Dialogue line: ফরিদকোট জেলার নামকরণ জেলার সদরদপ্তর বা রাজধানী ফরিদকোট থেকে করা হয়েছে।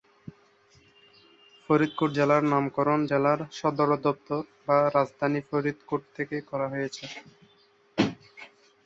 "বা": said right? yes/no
yes